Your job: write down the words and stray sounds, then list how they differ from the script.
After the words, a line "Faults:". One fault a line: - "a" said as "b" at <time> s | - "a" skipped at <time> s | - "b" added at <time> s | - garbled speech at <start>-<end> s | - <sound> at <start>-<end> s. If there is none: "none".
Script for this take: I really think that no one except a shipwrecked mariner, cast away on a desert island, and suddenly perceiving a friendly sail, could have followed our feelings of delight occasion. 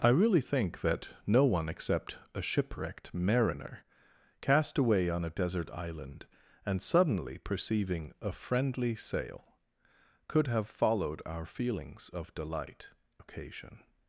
I really think that no one except a shipwrecked mariner, cast away on a desert island, and suddenly perceiving a friendly sail, could have followed our feelings of delight occasion.
Faults:
none